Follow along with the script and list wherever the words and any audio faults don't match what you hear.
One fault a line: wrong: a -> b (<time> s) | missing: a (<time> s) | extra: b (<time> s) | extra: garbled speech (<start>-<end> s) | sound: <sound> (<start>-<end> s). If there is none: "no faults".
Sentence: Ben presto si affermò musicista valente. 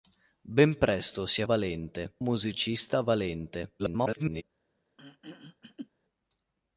wrong: affermò -> valente (1.4 s)
extra: garbled speech (3.8-4.4 s)
sound: throat clearing (5.0-5.9 s)